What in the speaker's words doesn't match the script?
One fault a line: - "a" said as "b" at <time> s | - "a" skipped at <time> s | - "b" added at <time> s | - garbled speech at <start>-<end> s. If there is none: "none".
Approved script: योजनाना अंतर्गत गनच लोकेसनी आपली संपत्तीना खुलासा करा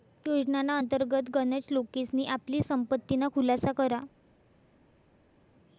none